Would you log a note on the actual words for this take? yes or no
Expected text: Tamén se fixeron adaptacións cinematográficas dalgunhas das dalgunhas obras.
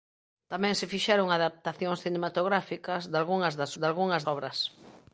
no